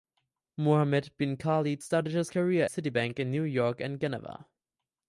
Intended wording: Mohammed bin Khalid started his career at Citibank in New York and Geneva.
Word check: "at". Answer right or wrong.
wrong